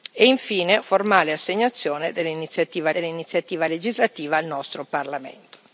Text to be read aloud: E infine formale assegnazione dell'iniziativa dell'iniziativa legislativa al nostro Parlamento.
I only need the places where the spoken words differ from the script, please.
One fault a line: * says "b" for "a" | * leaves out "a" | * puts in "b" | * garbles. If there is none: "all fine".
all fine